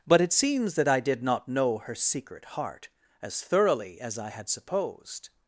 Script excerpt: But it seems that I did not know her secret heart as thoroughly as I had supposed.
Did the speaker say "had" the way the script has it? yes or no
yes